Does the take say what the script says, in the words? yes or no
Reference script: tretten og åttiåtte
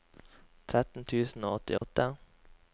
no